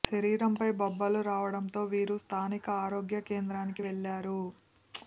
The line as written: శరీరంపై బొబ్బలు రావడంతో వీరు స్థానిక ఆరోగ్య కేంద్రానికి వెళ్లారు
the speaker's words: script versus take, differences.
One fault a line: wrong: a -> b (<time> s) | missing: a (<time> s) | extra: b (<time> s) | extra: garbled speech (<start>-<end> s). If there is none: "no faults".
no faults